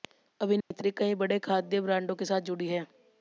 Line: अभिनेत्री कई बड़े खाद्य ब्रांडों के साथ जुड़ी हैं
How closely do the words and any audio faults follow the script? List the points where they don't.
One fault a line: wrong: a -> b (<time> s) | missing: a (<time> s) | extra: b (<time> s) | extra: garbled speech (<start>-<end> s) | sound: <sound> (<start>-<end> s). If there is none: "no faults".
sound: dropout (0.6-0.7 s)